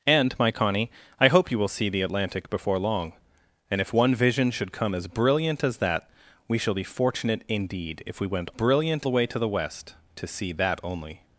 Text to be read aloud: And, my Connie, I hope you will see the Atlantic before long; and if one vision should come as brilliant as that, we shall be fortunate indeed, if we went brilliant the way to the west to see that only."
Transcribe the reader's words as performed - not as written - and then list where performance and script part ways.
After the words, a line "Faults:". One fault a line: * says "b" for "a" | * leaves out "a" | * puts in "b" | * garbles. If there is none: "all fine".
And, my Connie, I hope you will see the Atlantic before long; and if one vision should come as brilliant as that, we shall be fortunate indeed, if we went brilliant the way to the west to see that only."
Faults:
all fine